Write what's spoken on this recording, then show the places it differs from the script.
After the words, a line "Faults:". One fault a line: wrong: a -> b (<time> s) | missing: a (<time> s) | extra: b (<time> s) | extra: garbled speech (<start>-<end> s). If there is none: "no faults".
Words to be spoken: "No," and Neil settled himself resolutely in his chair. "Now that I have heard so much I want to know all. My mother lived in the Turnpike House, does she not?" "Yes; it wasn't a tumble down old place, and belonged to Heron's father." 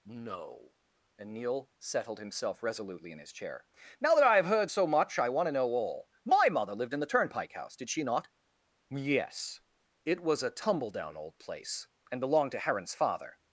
"No," and Neil settled himself resolutely in his chair. "Now that I have heard so much I want to know all. My mother lived in the Turnpike House, did she not?" "Yes; it was a tumble down old place, and belonged to Heron's father."
Faults:
wrong: does -> did (7.7 s)
wrong: wasn't -> was (10.2 s)